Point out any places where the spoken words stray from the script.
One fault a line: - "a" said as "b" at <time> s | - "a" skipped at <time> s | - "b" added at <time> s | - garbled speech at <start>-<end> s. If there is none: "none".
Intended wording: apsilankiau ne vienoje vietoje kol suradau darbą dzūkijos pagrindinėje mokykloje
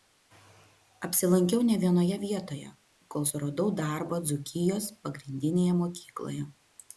none